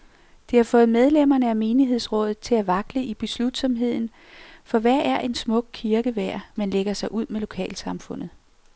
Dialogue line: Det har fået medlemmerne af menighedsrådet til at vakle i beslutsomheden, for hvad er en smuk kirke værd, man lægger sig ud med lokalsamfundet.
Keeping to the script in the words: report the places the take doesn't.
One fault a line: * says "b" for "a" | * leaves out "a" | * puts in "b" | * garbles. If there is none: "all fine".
all fine